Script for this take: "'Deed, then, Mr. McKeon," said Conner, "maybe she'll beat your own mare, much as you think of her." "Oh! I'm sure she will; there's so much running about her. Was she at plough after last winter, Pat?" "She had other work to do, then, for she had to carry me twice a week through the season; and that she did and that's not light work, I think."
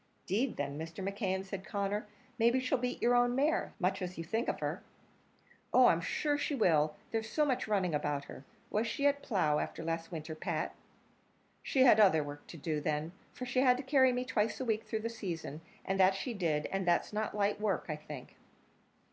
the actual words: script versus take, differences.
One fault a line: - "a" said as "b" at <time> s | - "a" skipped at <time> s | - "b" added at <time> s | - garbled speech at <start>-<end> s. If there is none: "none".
none